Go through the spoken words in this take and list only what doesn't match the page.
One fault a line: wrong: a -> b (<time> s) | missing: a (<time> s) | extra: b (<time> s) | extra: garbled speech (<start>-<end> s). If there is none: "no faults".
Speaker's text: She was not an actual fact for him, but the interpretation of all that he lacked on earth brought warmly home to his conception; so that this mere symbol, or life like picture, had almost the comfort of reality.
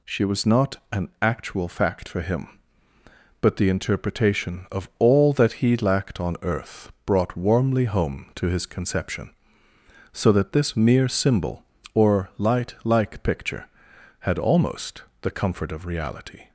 wrong: life -> light (12.4 s)